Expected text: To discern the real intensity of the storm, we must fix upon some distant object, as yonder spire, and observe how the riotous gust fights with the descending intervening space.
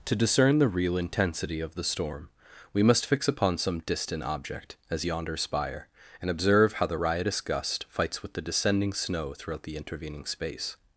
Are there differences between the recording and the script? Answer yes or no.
yes